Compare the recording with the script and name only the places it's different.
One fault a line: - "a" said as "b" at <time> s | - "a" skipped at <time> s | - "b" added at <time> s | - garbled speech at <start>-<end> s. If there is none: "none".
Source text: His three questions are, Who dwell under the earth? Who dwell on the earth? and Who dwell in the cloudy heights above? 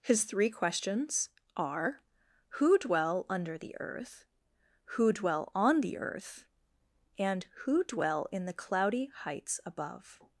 none